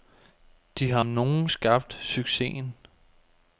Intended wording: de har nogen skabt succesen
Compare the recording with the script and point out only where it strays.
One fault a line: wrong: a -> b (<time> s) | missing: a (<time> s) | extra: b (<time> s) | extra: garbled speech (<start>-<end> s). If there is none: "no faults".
no faults